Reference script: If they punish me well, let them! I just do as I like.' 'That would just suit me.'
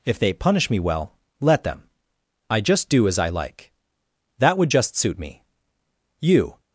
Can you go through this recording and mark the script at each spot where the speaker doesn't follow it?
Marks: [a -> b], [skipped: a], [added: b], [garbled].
If they punish me well, let them! I just do as I like.' 'That would just suit me.' [added: You]